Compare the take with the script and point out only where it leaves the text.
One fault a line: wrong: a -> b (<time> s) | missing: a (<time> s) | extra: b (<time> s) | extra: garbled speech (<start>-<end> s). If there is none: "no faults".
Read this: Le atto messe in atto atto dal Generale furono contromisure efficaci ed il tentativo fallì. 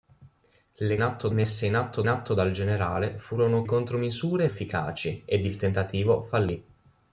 no faults